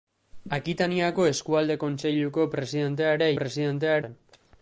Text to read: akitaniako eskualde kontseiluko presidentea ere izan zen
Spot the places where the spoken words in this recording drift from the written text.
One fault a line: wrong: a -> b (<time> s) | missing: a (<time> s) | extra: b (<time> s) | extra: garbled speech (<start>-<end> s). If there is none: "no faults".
wrong: izan -> presidentea (3.4 s)